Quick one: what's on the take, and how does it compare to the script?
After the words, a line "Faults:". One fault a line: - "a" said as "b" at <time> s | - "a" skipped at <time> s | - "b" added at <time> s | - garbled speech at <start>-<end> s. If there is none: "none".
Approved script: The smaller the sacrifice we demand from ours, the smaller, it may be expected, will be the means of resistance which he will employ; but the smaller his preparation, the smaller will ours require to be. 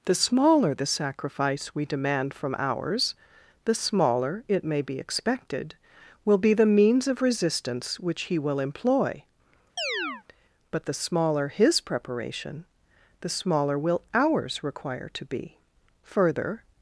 The smaller the sacrifice we demand from ours, the smaller, it may be expected, will be the means of resistance which he will employ; but the smaller his preparation, the smaller will ours require to be. Further
Faults:
- "Further" added at 16.0 s